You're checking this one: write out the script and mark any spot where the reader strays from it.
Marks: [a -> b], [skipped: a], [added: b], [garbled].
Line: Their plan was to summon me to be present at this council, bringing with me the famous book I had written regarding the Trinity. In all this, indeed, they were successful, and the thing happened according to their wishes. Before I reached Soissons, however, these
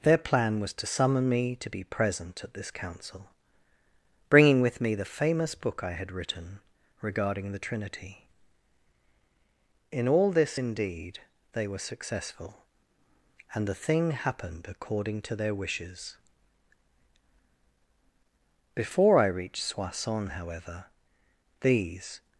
Their plan was to summon me to be present at this council, bringing with me the famous book I had written regarding the Trinity. In all this, indeed, they were successful, and the thing happened according to their wishes. Before I reached Soissons, however, these